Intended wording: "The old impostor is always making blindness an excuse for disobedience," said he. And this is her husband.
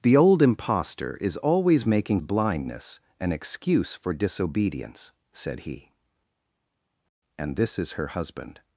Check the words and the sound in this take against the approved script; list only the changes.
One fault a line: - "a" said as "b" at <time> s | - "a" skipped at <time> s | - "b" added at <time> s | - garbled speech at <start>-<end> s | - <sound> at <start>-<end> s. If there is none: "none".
none